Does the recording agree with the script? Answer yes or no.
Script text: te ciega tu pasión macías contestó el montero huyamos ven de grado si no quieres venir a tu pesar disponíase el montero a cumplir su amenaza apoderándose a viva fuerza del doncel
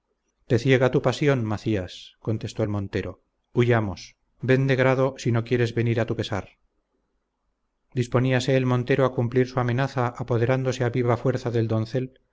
yes